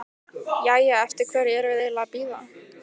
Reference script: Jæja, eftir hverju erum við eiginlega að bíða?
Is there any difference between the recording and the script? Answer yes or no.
no